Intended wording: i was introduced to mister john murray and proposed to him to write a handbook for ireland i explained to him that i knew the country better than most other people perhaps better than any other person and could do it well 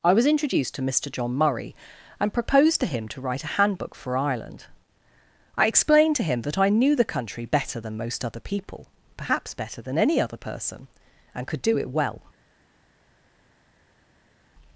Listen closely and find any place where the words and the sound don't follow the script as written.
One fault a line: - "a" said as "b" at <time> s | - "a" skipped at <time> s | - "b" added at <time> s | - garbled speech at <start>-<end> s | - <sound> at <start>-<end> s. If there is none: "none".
none